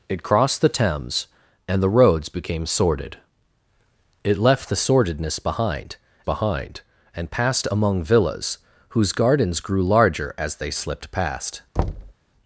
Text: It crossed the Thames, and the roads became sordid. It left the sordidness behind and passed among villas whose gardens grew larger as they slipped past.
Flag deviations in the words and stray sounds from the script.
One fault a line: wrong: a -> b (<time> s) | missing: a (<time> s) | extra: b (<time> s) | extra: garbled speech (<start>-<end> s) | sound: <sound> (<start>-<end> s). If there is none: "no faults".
extra: behind (6.2 s)
sound: thud (11.8-12.1 s)